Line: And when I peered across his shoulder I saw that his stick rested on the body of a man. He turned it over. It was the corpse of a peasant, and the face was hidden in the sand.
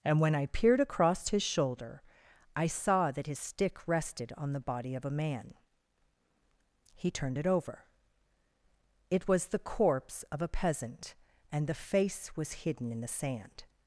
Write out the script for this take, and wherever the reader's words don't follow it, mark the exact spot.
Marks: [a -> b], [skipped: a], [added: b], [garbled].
And when I peered across his shoulder I saw that his stick rested on the body of a man. He turned it over. It was the corpse of a peasant, and the face was hidden in the sand.